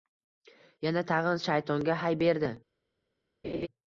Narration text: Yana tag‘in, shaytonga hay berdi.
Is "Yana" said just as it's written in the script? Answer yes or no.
yes